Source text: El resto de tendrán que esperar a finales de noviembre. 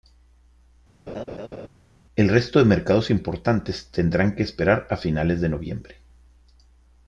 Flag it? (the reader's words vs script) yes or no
yes